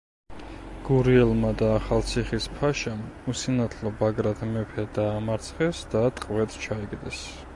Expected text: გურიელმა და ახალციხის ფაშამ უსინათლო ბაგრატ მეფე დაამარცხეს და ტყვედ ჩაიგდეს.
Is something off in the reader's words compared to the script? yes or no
no